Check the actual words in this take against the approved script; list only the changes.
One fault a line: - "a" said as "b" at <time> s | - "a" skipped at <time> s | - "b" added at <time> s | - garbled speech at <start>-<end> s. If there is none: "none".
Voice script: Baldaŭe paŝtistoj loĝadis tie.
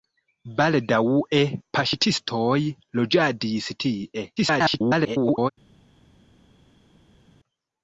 - garbled speech at 4.4-5.5 s